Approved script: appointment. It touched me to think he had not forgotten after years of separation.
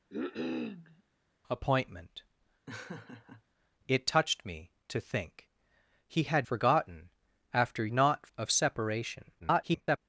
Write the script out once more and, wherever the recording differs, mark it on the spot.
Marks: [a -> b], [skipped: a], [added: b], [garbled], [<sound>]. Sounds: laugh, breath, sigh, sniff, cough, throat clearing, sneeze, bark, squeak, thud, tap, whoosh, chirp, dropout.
[cough] appointment. [laugh] It touched me to think he had [skipped: not] forgotten after [years -> not] of separation. [garbled]